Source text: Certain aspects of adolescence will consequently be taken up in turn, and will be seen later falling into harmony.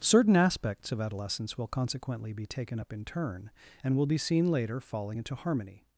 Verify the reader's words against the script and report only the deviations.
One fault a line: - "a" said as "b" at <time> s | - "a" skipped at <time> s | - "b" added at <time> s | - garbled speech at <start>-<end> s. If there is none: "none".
none